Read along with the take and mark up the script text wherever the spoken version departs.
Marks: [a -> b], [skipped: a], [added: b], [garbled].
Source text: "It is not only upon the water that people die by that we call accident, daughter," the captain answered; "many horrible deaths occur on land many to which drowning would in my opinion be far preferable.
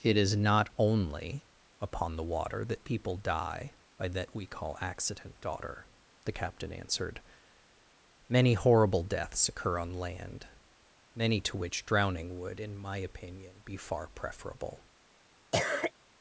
"It is not only upon the water that people die by that we call accident, daughter," the captain answered; "many horrible deaths occur on land many to which drowning would in my opinion be far preferable.